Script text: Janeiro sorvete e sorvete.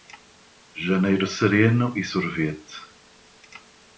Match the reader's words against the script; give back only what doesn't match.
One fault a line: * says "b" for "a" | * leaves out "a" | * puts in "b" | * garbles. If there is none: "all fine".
* says "sereno" for "sorvete"